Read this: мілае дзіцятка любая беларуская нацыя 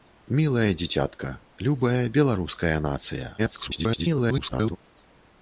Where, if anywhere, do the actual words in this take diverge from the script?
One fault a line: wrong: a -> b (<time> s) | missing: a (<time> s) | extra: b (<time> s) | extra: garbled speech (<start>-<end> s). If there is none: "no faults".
extra: garbled speech (3.4-4.8 s)